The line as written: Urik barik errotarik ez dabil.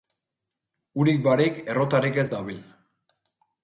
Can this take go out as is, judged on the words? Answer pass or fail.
pass